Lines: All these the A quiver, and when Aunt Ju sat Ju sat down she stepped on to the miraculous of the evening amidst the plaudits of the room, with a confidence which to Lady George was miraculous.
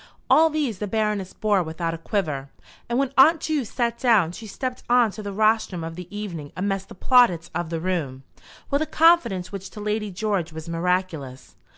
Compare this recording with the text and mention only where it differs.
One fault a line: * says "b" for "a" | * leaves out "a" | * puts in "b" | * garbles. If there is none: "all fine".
* puts in "Baroness bore without"
* leaves out "Ju sat"
* says "rostrum" for "miraculous"